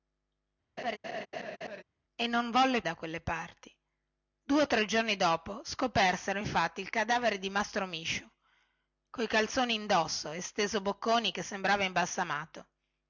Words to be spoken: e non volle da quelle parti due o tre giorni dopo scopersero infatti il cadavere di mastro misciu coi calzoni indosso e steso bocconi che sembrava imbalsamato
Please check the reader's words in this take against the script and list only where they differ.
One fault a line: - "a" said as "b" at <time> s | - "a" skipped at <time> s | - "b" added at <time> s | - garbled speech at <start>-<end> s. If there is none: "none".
none